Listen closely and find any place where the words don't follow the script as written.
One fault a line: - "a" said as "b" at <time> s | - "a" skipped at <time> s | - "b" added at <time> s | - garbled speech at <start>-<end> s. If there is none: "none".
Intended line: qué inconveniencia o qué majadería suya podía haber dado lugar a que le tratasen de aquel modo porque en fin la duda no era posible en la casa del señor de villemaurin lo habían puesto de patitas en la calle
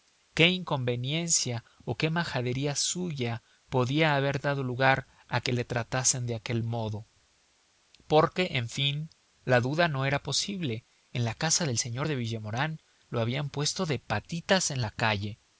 none